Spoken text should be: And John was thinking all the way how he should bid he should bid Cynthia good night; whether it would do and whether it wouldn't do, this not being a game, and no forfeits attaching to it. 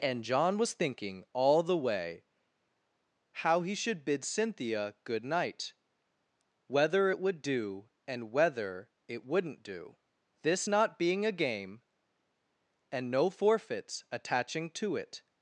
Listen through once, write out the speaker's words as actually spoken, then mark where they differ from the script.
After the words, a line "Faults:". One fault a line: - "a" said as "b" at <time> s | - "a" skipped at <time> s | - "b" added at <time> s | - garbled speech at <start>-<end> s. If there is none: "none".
And John was thinking all the way how he should bid Cynthia good night; whether it would do and whether it wouldn't do, this not being a game, and no forfeits attaching to it.
Faults:
- "he should bid" skipped at 4.2 s